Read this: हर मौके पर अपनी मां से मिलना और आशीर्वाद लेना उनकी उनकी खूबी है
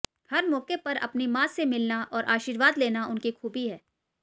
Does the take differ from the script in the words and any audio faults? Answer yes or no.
yes